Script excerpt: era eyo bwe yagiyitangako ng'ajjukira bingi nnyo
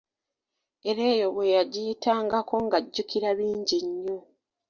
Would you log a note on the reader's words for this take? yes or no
no